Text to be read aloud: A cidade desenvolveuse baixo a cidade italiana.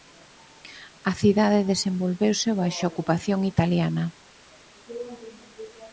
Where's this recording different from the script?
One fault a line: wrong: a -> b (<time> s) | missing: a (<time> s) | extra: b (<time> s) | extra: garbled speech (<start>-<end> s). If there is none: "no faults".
wrong: cidade -> ocupación (2.9 s)